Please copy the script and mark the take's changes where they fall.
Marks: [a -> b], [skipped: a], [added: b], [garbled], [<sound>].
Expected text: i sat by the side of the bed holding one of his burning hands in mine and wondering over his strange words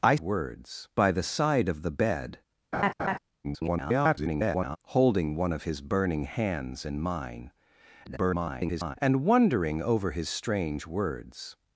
i [sat -> words] by the side of the bed [laugh] [garbled] holding one of his burning hands in mine [garbled] and wondering over his strange words